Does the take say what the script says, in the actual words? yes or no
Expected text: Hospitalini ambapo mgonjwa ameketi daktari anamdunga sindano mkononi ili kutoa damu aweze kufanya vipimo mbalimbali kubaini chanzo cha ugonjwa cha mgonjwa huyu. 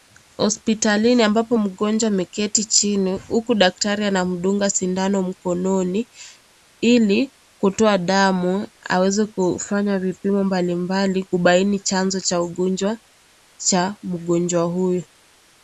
no